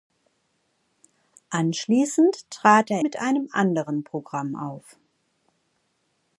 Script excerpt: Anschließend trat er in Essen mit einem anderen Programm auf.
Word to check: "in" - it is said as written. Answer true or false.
false